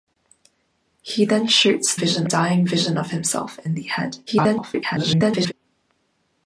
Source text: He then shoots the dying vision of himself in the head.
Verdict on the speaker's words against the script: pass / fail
fail